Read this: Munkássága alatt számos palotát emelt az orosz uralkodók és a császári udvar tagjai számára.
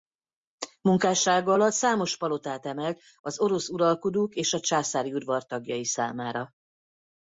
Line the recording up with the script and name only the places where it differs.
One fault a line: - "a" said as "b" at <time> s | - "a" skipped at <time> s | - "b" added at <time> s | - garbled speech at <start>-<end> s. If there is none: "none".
none